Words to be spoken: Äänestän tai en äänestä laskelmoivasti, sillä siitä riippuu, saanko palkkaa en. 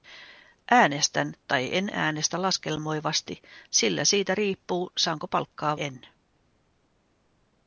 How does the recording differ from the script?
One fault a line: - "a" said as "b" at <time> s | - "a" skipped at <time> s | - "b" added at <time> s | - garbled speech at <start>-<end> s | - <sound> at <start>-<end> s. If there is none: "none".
none